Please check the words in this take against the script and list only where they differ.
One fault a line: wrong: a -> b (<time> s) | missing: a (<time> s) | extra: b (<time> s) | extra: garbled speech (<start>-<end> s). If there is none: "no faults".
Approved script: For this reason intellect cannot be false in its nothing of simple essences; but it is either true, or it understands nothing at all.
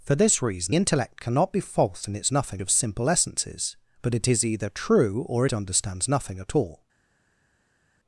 no faults